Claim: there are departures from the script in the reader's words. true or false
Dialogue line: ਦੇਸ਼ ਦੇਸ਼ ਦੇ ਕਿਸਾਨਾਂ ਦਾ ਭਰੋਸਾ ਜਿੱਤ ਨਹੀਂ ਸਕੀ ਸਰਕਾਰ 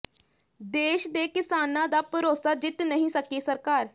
true